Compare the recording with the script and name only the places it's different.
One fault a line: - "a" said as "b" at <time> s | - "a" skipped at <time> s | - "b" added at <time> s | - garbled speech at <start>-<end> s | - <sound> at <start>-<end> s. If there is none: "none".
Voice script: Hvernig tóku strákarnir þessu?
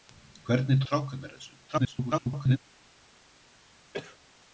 - "tóku" skipped at 0.8 s
- garbled speech at 1.7-2.6 s
- cough at 3.9-4.2 s